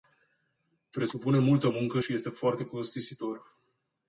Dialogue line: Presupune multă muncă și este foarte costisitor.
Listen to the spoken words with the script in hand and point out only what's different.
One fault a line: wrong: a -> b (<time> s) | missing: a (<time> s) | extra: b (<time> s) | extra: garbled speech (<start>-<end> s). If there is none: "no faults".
no faults